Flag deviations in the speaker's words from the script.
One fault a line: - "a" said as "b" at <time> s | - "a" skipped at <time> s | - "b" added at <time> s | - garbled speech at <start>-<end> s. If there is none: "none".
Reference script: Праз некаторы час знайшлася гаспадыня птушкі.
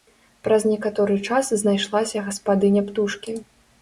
none